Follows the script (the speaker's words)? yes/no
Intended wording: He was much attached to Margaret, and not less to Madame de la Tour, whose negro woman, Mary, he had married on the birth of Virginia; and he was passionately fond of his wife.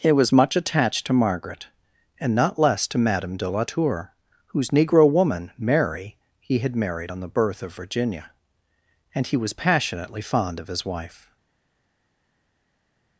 yes